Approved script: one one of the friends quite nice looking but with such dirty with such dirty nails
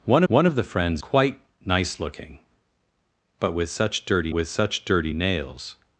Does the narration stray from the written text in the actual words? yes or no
no